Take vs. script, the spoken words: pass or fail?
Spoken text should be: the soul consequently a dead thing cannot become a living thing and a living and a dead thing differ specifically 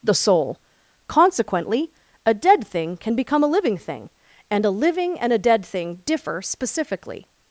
fail